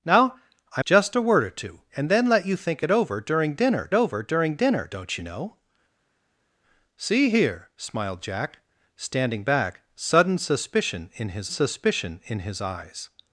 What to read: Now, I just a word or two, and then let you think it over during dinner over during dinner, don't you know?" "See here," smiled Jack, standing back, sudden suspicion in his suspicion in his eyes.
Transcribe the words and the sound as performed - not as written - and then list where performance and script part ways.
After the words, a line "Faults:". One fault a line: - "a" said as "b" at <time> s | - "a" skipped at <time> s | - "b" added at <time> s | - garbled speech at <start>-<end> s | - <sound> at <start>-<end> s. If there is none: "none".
Now, I just a word or two, and then let you think it over during dinner over during dinner, don't you know?" "See here," smiled Jack, standing back, sudden suspicion in his suspicion in his eyes.
Faults:
none